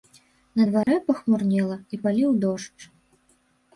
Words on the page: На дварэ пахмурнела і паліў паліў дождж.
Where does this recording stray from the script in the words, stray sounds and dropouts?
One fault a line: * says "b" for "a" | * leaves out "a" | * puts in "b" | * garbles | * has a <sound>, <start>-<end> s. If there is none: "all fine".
* has a dropout, 0.8-0.9 s
* leaves out "паліў"